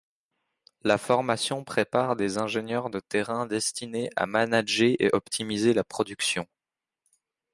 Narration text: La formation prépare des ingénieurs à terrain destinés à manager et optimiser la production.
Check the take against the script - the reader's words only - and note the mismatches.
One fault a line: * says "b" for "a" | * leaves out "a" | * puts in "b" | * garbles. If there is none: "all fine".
* says "de" for "à"